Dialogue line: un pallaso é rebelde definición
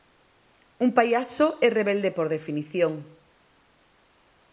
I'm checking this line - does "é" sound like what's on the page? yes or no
yes